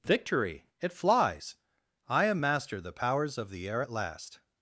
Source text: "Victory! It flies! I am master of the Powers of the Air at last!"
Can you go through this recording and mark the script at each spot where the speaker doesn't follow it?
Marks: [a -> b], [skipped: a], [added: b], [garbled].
"Victory! It flies! I am master [skipped: of] the Powers of the Air at last!"